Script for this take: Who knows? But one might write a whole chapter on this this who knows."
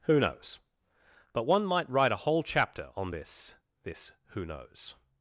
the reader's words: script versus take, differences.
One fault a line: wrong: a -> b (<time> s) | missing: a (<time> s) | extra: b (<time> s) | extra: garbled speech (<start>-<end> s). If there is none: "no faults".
no faults